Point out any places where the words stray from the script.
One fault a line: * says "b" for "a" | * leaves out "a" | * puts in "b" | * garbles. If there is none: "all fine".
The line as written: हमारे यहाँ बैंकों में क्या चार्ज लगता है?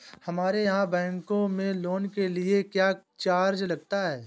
* puts in "लोन के लिए"